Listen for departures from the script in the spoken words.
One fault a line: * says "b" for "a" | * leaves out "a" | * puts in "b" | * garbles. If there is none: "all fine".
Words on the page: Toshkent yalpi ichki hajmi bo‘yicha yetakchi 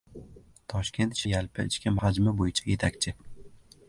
all fine